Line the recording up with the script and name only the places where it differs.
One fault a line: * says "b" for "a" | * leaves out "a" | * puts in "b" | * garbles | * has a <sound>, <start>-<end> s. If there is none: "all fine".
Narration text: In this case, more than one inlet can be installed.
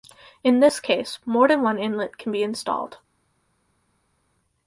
all fine